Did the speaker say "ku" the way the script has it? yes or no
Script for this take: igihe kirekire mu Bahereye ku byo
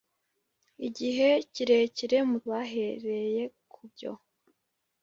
yes